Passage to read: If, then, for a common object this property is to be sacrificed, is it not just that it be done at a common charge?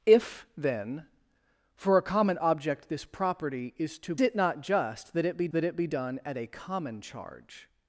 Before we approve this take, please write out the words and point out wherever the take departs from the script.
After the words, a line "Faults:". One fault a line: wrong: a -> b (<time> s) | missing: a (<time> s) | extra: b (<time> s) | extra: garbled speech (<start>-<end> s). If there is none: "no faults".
If, then, for a common object this property is to it not just that it be that it be done at a common charge?
Faults:
wrong: be sacrificed is -> it not just that (4.2 s)
wrong: not just -> be (5.4 s)